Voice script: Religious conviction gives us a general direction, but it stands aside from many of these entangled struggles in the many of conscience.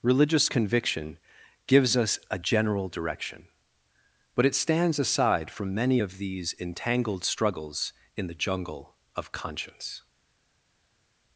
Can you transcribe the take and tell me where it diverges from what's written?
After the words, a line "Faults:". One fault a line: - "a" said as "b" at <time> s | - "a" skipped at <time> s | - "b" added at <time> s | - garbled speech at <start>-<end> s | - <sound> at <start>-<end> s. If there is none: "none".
Religious conviction gives us a general direction, but it stands aside from many of these entangled struggles in the jungle of conscience.
Faults:
- "many" said as "jungle" at 8.3 s